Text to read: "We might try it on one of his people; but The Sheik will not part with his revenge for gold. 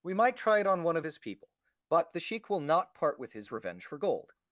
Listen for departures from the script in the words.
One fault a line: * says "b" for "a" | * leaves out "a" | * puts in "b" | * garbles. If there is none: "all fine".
all fine